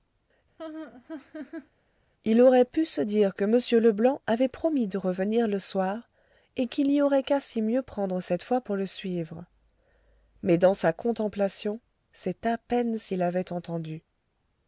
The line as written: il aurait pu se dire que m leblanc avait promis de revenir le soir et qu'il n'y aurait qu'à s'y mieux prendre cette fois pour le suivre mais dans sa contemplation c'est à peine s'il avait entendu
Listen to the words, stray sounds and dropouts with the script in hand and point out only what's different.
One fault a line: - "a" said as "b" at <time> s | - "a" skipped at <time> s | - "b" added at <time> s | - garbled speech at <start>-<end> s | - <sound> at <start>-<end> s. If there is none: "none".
- laugh at 0.6-1.7 s